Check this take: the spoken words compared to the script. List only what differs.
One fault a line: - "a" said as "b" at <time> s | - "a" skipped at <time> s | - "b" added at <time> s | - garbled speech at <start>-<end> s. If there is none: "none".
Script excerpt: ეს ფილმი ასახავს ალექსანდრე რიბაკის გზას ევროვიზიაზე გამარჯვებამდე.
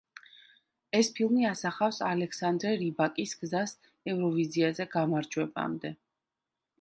none